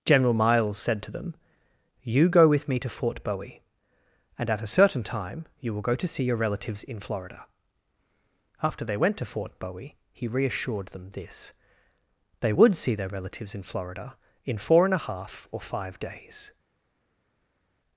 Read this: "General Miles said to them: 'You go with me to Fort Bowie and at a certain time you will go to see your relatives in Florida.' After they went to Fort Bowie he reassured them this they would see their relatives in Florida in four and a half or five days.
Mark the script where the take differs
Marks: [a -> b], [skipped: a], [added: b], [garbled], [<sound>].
"General Miles said to them: 'You go with me to Fort Bowie and at a certain time you will go to see your relatives in Florida.' After they went to Fort Bowie he reassured them this they would see their relatives in Florida in four and a half or five days.